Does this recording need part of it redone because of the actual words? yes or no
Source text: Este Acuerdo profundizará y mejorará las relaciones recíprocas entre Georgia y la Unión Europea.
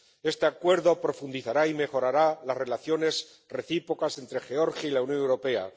no